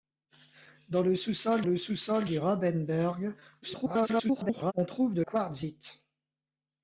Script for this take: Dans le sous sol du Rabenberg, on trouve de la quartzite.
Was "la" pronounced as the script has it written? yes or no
no